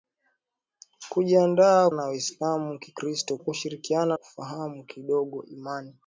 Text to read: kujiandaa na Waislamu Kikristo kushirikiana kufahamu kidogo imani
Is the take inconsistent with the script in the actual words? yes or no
no